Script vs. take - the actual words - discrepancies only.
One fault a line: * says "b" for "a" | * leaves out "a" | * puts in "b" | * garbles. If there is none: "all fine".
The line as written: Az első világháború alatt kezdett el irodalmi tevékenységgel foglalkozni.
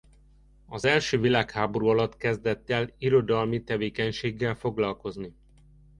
all fine